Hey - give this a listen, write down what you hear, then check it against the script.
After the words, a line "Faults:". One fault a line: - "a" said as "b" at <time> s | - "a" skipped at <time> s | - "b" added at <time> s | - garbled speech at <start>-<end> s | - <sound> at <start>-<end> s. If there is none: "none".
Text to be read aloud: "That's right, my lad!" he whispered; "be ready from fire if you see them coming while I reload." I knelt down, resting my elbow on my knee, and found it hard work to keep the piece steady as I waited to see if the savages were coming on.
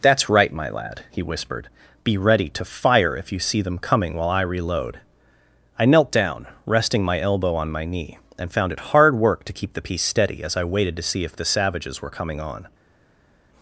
"That's right, my lad!" he whispered; "be ready to fire if you see them coming while I reload." I knelt down, resting my elbow on my knee, and found it hard work to keep the piece steady as I waited to see if the savages were coming on.
Faults:
- "from" said as "to" at 2.5 s